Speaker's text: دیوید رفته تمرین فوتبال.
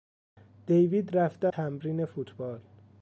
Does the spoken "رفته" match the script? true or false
true